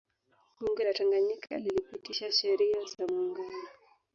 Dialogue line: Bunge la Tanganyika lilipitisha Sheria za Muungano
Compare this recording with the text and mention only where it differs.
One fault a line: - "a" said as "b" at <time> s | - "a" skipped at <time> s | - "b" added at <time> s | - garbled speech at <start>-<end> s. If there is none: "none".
none